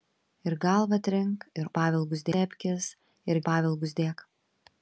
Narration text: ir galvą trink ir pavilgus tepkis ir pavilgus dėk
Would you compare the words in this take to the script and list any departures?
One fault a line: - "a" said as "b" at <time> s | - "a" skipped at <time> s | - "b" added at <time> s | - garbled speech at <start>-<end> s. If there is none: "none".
none